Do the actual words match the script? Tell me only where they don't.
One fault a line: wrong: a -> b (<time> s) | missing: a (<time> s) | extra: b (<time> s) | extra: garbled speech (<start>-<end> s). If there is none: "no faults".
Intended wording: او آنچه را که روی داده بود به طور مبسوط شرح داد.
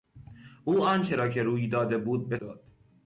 missing: طور مبسوط شرح (2.4 s)